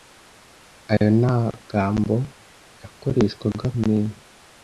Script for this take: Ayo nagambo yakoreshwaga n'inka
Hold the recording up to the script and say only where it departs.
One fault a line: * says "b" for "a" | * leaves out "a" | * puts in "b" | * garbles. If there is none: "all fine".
all fine